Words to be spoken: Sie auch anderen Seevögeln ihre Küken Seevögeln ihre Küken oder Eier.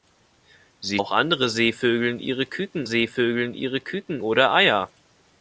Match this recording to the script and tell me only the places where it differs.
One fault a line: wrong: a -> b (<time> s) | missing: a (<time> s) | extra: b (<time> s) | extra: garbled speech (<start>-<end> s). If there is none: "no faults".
no faults